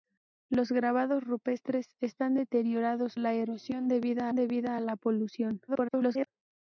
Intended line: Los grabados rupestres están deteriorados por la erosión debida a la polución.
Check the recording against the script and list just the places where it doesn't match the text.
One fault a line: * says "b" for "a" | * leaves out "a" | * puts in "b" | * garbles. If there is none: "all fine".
* leaves out "por"
* puts in "debida"
* garbles